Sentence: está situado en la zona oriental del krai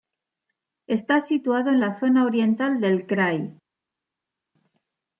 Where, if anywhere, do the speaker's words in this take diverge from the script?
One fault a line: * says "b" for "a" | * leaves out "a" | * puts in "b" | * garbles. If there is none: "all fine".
all fine